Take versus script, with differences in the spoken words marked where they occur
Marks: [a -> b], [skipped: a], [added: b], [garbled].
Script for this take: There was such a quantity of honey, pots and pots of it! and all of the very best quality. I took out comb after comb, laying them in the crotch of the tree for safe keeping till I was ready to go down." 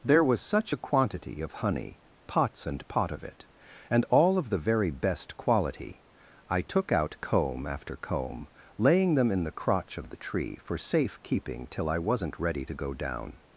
There was such a quantity of honey, pots and [pots -> pot] of it! and all of the very best quality. I took out comb after comb, laying them in the crotch of the tree for safe keeping till I [was -> wasn't] ready to go down."